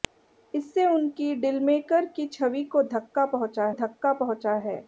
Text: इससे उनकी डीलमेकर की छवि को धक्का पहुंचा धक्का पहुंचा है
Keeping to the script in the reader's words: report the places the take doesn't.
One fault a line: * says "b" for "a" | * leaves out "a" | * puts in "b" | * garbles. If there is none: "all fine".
all fine